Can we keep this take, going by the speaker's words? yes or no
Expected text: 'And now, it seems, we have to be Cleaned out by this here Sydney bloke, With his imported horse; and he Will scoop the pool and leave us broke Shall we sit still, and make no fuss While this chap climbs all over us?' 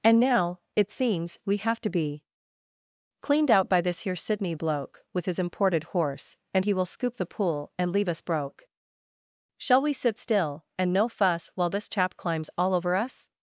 no